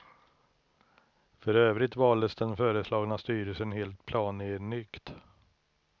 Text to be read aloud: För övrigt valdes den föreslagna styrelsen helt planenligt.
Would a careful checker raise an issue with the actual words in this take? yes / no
no